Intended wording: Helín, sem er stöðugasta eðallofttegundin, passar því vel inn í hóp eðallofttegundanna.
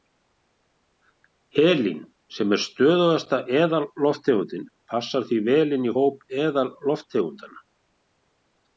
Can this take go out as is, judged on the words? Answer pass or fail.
pass